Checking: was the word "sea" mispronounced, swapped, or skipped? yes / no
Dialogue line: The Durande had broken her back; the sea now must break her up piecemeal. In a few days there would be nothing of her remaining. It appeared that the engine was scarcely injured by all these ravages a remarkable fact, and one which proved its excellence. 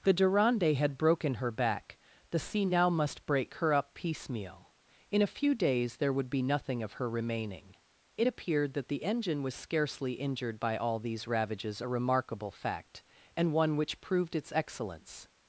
no